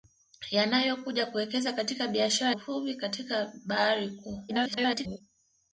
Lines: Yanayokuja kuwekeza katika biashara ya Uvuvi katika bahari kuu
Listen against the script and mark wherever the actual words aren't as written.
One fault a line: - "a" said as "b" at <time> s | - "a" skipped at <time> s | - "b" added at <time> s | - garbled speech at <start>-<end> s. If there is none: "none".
- "ya" skipped at 2.5 s
- garbled speech at 4.5-5.2 s